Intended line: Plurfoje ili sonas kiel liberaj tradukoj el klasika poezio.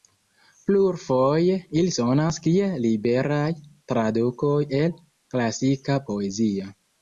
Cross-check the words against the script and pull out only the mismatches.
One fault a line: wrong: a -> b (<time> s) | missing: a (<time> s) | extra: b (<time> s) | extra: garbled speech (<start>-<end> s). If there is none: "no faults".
no faults